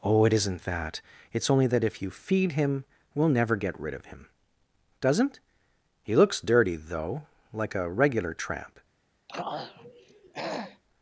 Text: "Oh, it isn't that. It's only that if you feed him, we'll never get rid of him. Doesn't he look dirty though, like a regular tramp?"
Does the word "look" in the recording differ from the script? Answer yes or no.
yes